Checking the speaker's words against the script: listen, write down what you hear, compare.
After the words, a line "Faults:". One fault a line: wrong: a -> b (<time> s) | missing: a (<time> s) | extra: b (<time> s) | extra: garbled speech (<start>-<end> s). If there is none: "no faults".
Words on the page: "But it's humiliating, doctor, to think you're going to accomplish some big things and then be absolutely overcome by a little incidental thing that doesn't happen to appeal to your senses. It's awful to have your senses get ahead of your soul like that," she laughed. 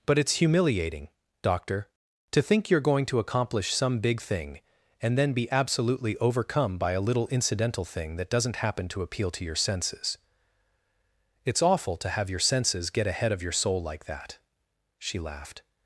"But it's humiliating, doctor, to think you're going to accomplish some big thing and then be absolutely overcome by a little incidental thing that doesn't happen to appeal to your senses. It's awful to have your senses get ahead of your soul like that," she laughed.
Faults:
wrong: things -> thing (4.2 s)